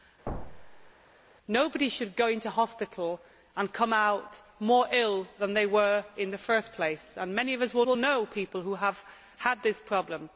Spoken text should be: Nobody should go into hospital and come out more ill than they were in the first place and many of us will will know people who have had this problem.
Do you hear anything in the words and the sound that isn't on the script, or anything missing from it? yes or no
yes